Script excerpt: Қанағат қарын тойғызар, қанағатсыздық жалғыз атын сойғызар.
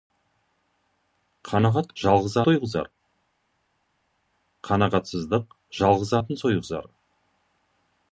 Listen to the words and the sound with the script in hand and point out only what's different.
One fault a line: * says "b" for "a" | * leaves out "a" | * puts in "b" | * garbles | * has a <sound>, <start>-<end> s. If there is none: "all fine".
* says "жалғыз" for "қарын"